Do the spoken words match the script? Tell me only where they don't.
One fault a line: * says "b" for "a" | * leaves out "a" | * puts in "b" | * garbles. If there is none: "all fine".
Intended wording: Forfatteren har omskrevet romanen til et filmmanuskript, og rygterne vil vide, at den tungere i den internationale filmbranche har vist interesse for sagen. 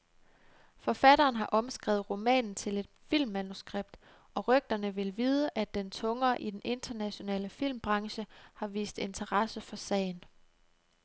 all fine